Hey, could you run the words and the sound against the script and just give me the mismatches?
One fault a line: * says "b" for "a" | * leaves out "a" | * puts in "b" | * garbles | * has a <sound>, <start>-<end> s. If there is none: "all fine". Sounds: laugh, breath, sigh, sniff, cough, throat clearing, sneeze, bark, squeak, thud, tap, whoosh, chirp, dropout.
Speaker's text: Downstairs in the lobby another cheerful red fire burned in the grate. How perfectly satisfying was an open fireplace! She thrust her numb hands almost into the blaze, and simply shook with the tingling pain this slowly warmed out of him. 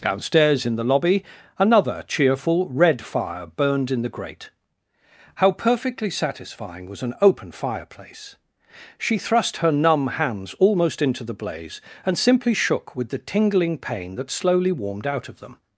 * says "that" for "this"
* says "them" for "him"